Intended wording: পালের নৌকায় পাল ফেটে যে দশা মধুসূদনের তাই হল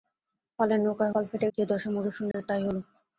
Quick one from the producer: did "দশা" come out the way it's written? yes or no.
yes